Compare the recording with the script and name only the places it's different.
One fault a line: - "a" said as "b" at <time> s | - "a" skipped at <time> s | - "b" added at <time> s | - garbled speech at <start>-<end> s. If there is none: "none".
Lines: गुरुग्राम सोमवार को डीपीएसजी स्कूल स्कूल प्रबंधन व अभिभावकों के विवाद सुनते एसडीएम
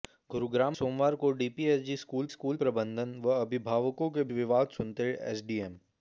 none